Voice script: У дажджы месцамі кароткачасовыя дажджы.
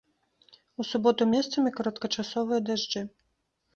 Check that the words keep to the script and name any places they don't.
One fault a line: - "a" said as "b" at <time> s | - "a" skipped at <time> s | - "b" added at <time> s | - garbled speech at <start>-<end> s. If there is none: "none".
- "дажджы" said as "суботу" at 0.9 s